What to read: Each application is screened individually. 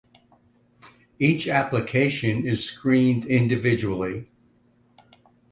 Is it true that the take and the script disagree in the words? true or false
false